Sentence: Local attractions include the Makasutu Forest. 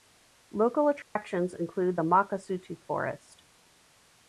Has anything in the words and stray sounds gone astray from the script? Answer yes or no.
yes